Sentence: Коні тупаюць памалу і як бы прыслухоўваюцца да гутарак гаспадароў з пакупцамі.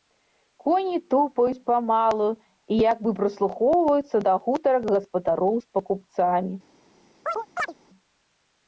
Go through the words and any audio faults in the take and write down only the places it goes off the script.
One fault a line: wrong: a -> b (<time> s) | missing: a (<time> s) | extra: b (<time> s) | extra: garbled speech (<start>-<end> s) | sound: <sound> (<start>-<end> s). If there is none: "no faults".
sound: chirp (7.3-7.7 s)